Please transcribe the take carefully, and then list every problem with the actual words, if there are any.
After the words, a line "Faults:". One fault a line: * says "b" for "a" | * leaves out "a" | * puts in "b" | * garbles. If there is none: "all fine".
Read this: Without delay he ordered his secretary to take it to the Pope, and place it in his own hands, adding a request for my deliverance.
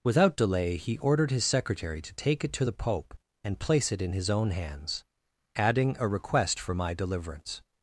Without delay he ordered his secretary to take it to the Pope, and place it in his own hands, adding a request for my deliverance.
Faults:
all fine